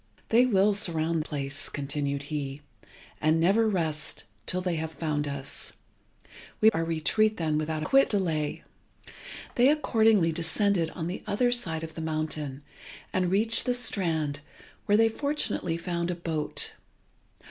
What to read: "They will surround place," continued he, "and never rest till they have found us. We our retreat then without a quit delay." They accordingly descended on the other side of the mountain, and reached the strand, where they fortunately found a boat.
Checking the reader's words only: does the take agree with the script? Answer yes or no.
yes